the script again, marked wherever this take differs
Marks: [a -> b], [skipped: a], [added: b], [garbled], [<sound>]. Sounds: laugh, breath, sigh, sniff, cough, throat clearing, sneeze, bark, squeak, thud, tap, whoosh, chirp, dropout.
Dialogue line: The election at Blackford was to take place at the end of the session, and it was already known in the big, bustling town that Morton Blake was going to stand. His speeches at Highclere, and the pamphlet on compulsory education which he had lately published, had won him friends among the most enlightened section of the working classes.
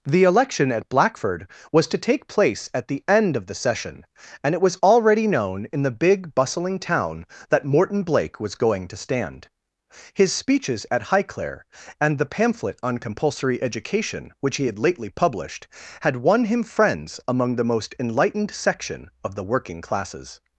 The election at Blackford was to take place at the end of the session, and it was already known in the big, bustling town that Morton Blake was going to stand. His speeches at Highclere, and the pamphlet on compulsory education which he had lately published, had won him friends among the most enlightened section of the working classes.